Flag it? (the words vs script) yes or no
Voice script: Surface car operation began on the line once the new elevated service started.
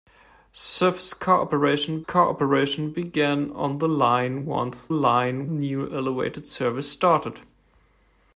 yes